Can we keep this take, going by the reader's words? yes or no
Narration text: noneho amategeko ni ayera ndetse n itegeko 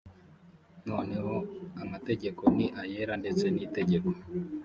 yes